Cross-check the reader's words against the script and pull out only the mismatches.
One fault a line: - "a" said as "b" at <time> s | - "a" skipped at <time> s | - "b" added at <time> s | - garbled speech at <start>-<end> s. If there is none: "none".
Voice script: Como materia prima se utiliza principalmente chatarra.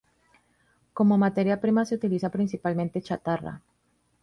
none